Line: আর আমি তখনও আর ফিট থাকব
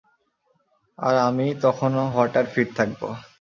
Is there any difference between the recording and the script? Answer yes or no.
yes